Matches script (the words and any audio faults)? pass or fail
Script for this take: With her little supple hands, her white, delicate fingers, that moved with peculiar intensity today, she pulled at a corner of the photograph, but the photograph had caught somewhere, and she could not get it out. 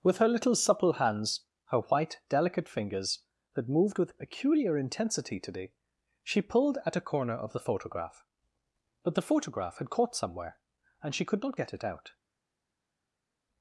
pass